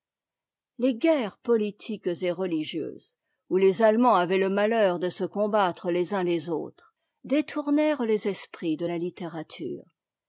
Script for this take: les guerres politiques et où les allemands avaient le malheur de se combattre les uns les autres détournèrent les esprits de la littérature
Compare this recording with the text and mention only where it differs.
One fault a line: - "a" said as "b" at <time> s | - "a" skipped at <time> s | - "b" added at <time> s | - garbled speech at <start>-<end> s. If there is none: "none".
- "religieuses" added at 2.3 s